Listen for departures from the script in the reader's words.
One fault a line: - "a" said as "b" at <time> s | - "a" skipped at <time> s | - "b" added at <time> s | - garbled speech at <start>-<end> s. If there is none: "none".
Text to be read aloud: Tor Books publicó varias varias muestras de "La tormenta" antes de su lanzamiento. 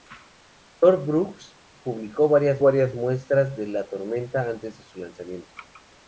none